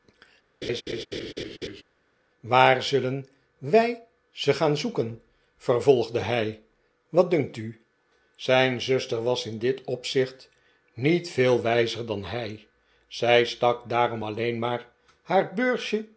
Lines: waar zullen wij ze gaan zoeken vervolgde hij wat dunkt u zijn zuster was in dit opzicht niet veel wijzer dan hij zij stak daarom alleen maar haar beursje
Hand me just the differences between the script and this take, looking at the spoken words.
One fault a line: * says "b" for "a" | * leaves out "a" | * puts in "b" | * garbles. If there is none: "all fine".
all fine